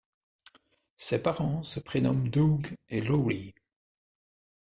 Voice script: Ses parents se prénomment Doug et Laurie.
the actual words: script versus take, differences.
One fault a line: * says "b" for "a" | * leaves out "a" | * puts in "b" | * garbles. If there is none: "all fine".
all fine